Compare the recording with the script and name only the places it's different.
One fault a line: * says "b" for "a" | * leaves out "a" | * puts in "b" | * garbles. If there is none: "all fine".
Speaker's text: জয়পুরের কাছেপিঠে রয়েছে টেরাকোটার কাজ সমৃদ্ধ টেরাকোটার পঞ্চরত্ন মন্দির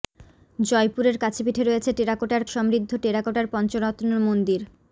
* leaves out "কাজ"